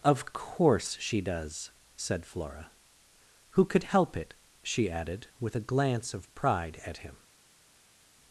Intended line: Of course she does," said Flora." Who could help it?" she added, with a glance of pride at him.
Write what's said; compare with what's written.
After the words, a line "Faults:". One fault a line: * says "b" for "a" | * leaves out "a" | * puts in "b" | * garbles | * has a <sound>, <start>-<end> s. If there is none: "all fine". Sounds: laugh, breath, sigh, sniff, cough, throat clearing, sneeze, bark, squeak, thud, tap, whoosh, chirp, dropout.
Of course she does," said Flora." Who could help it?" she added, with a glance of pride at him.
Faults:
all fine